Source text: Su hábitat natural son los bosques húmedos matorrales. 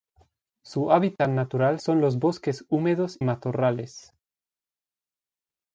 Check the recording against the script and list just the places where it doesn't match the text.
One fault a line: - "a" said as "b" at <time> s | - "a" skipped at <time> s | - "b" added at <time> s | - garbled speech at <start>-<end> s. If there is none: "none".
none